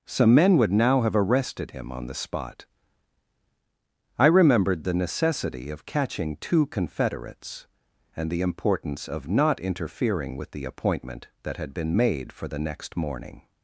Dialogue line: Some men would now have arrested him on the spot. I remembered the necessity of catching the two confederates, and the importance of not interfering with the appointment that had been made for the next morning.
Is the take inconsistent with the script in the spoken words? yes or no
yes